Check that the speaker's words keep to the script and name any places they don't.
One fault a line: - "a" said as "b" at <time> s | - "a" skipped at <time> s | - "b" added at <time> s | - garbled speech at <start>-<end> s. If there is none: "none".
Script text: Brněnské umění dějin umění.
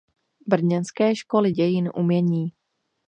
- "umění" said as "školy" at 1.1 s